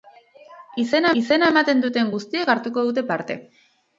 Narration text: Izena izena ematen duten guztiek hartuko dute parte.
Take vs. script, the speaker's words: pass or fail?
pass